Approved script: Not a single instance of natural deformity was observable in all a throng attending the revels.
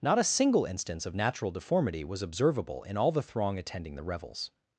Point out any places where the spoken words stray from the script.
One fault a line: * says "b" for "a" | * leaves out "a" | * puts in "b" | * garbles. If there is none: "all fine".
* says "the" for "a"